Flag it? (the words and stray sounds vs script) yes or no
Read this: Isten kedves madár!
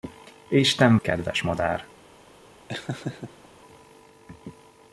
yes